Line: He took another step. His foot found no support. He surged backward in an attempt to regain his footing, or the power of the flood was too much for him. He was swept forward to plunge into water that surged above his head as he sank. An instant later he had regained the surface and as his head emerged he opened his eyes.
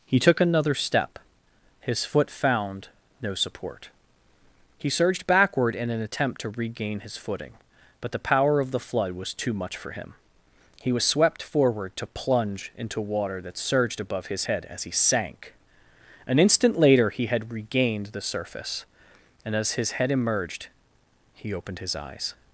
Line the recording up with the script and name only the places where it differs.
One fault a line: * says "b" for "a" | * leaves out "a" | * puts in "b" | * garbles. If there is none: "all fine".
* says "but" for "or"